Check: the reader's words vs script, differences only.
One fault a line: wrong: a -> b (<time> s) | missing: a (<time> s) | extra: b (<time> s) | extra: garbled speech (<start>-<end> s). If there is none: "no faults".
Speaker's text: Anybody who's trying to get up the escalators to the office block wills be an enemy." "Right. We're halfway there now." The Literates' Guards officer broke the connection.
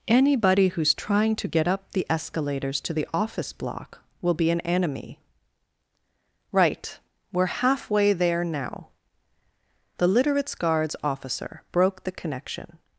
wrong: wills -> will (4.2 s)